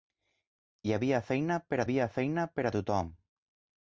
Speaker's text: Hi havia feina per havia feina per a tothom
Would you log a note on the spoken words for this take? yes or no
no